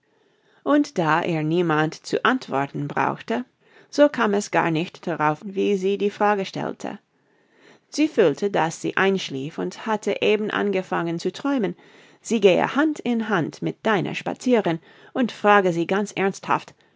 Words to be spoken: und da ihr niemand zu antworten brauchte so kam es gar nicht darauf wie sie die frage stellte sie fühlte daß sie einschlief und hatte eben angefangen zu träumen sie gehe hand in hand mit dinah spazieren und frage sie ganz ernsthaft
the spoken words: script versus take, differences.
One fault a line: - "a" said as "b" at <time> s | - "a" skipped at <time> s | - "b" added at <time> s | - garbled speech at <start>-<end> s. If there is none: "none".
none